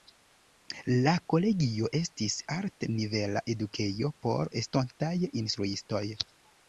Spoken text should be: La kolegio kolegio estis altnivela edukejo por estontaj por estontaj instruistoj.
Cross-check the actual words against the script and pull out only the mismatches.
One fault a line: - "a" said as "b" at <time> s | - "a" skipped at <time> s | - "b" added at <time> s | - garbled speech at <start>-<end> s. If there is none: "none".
- "kolegio" skipped at 1.9 s
- "por estontaj" skipped at 5.2 s